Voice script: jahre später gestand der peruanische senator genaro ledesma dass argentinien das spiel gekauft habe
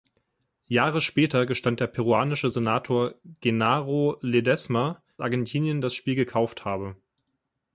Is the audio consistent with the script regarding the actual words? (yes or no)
no